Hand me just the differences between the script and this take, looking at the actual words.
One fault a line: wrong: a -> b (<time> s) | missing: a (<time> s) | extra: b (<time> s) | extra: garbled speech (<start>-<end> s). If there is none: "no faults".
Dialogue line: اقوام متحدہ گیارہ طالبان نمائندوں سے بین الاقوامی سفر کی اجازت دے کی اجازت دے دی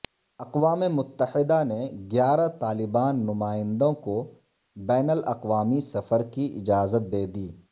extra: نے (1.6 s)
wrong: سے -> کو (4.0 s)
missing: کی اجازت دے (7.2 s)